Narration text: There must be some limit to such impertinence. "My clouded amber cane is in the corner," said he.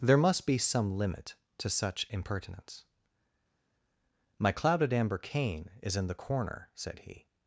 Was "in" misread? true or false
false